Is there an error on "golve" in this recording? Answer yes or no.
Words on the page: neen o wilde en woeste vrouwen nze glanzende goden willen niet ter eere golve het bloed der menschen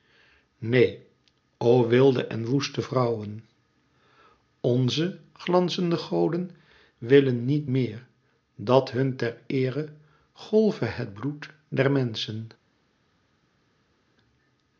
no